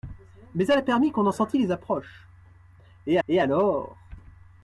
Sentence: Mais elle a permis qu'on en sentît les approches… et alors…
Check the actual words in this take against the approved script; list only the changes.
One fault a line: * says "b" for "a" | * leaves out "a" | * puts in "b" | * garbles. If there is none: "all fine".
* puts in "et"